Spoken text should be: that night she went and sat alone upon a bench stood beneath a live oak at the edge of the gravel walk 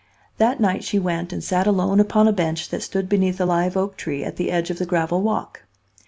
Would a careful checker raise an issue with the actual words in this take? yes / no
yes